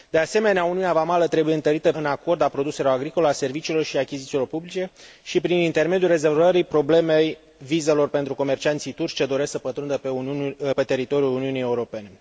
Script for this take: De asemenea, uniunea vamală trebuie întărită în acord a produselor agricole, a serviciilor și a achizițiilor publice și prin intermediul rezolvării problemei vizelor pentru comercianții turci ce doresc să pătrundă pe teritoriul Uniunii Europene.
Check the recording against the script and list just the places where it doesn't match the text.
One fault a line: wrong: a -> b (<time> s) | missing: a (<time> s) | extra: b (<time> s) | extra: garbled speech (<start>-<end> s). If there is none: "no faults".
no faults